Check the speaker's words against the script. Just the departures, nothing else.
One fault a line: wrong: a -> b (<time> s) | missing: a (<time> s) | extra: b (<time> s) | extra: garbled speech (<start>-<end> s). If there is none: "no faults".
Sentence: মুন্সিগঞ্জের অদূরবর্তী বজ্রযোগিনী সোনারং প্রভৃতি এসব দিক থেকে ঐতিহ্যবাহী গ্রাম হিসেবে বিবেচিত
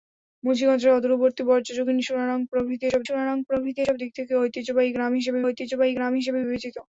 extra: সোনারং প্রভৃতি এসব (3.0 s)
extra: ঐতিহ্যবাহী গ্রাম হিসেবে (5.5 s)